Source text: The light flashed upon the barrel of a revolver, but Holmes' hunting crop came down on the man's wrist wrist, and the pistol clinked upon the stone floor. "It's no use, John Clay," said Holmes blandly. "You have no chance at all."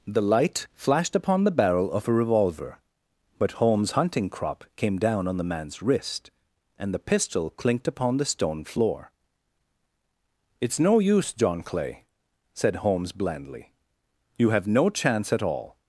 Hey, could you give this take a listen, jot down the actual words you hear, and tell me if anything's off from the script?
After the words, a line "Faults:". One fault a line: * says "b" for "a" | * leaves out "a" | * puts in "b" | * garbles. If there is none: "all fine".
The light flashed upon the barrel of a revolver, but Holmes' hunting crop came down on the man's wrist, and the pistol clinked upon the stone floor. "It's no use, John Clay," said Holmes blandly. "You have no chance at all."
Faults:
* leaves out "wrist"